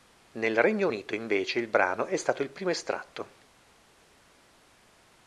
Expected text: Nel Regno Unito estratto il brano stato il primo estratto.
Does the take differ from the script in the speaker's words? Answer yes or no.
yes